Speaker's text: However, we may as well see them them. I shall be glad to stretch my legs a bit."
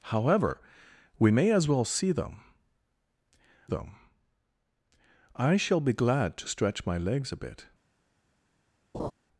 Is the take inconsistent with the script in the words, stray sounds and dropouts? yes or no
yes